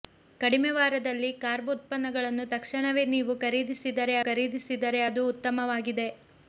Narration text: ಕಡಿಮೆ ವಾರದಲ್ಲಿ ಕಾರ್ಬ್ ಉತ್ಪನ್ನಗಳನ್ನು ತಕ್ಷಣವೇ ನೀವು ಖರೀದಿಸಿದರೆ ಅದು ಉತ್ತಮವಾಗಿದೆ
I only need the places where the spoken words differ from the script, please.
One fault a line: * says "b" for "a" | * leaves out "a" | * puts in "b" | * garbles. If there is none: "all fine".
* puts in "ಖರೀದಿಸಿದರೆ"